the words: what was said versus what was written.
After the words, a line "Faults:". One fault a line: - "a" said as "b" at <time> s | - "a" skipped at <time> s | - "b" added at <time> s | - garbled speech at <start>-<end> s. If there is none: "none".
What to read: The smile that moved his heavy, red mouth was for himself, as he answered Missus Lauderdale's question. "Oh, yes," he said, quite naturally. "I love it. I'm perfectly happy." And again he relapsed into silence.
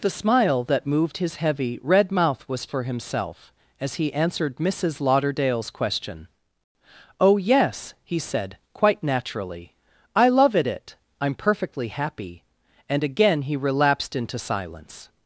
The smile that moved his heavy, red mouth was for himself, as he answered Missus Lauderdale's question. "Oh, yes," he said, quite naturally. "I love it it. I'm perfectly happy." And again he relapsed into silence.
Faults:
- "it" added at 10.7 s